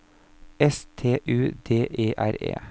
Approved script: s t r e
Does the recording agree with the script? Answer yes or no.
no